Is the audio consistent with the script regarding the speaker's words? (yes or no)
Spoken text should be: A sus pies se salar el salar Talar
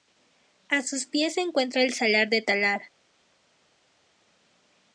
no